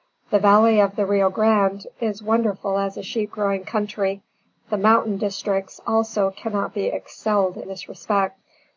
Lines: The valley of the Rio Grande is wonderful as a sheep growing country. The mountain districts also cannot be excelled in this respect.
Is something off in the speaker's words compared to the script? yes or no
yes